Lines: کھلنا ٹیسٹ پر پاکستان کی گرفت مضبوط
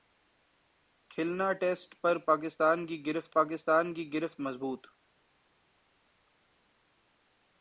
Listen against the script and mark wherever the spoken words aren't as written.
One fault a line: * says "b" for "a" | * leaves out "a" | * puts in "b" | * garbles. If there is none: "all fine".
* puts in "پاکستان کی گرفت"